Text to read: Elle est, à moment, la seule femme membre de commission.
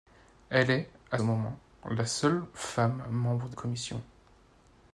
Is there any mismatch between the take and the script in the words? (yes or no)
no